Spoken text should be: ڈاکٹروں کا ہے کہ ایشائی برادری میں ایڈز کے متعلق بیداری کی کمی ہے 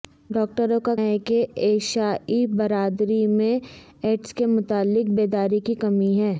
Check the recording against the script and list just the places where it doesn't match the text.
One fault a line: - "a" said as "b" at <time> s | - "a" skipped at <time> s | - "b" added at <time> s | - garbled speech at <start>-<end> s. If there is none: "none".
none